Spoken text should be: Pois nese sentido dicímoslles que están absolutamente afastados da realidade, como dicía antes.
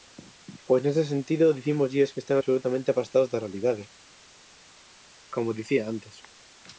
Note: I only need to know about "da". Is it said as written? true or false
true